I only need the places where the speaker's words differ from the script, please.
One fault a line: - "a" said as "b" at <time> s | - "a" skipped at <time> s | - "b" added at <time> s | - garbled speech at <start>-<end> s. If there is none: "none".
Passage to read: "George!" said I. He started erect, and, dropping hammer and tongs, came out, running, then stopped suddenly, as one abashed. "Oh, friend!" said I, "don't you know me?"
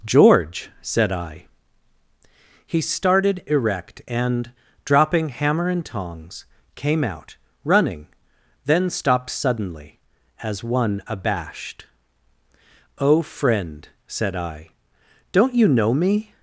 none